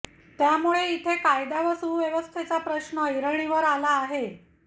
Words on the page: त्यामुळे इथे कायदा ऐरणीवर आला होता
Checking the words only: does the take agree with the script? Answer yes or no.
no